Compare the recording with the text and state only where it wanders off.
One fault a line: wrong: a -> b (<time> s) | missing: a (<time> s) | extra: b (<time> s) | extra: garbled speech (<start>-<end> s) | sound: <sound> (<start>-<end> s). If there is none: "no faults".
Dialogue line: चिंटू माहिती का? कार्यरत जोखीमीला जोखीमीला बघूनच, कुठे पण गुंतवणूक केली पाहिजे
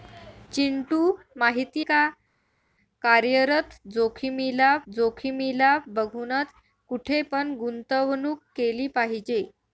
no faults